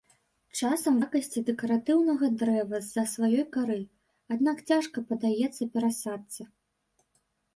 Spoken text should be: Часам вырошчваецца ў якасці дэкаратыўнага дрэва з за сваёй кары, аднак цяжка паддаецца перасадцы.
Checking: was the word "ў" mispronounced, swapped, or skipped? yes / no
yes